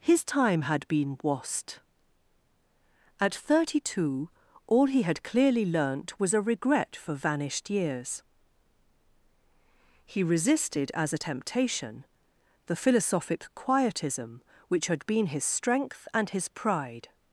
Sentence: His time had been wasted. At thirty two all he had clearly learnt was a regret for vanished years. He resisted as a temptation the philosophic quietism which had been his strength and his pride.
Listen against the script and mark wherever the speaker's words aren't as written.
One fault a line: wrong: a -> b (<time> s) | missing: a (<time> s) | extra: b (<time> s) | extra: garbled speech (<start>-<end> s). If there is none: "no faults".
wrong: wasted -> wast (1.2 s)